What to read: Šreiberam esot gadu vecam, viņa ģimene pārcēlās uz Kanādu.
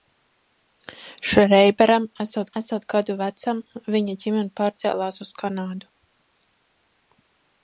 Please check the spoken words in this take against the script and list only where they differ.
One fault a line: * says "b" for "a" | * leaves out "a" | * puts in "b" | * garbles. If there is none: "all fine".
* puts in "esot"